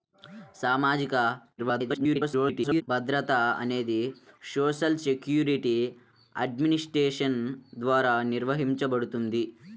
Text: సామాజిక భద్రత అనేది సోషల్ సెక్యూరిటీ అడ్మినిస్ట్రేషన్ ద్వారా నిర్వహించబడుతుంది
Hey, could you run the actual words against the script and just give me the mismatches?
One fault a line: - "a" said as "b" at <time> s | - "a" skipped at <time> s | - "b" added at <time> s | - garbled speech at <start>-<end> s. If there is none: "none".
- garbled speech at 1.6-2.8 s